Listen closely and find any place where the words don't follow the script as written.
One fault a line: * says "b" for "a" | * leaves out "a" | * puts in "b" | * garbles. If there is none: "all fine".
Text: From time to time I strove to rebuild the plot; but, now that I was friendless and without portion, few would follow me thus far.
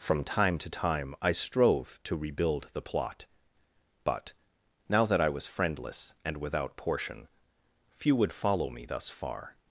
all fine